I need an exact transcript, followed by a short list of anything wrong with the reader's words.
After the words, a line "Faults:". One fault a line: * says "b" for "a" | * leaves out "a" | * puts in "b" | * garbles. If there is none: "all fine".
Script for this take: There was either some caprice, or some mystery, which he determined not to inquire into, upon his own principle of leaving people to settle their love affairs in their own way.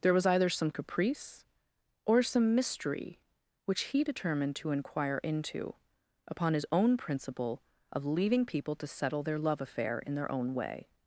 There was either some caprice, or some mystery, which he determined to inquire into, upon his own principle of leaving people to settle their love affair in their own way.
Faults:
* leaves out "not"
* says "affair" for "affairs"